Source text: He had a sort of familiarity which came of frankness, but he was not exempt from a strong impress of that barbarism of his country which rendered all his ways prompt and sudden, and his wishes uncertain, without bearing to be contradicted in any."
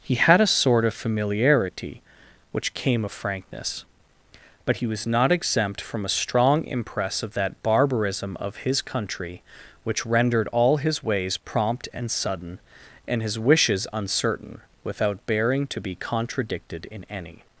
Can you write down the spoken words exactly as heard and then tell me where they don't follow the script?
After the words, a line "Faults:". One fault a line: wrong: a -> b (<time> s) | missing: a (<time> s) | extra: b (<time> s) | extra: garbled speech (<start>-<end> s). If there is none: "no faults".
He had a sort of familiarity which came of frankness, but he was not exempt from a strong impress of that barbarism of his country which rendered all his ways prompt and sudden, and his wishes uncertain, without bearing to be contradicted in any."
Faults:
no faults